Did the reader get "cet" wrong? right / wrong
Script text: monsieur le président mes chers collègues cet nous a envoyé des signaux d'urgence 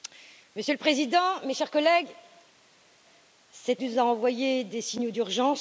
right